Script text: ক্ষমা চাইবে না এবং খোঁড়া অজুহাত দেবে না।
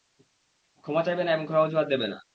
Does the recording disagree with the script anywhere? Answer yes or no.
no